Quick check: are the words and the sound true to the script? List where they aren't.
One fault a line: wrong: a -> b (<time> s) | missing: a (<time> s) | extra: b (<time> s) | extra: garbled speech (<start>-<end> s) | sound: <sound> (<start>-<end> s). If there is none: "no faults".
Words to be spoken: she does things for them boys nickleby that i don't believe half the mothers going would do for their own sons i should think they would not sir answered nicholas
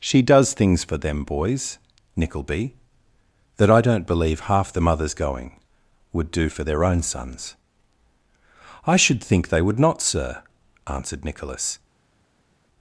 no faults